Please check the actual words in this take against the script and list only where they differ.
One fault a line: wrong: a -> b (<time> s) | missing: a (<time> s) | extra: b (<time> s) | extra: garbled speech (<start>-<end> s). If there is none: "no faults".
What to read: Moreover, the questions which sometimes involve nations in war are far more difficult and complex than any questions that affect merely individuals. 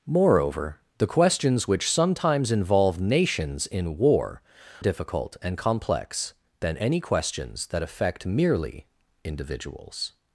missing: are far more (4.4 s)